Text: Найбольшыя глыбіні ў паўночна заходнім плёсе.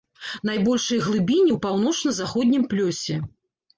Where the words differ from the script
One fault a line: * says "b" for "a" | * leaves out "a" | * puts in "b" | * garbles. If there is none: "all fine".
all fine